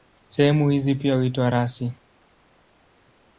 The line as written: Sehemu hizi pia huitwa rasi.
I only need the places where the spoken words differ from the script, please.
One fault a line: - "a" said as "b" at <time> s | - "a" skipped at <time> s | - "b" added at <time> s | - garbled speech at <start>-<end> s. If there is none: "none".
none